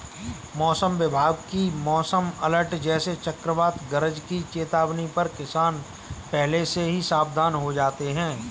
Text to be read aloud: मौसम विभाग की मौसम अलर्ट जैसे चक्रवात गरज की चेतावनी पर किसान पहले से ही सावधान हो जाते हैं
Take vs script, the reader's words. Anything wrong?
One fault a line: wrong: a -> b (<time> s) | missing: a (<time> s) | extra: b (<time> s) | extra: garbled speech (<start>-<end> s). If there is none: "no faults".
no faults